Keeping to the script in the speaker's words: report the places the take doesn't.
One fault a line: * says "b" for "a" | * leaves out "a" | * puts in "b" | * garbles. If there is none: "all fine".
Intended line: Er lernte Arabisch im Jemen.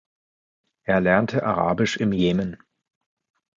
all fine